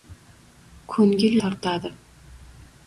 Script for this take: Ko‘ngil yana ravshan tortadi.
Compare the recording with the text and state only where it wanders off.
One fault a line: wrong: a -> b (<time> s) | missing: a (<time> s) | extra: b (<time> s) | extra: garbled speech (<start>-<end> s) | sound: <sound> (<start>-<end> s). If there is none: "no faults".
missing: yana ravshan (1.4 s)